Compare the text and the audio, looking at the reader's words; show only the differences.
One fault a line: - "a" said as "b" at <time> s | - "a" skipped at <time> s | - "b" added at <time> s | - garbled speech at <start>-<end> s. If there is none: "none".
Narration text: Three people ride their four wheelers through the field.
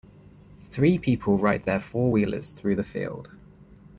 none